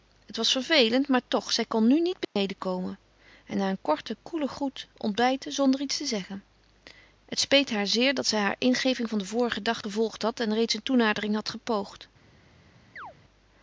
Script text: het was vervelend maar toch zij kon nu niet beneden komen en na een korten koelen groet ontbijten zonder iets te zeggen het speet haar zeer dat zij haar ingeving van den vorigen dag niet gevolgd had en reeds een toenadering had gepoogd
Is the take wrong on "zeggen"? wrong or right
right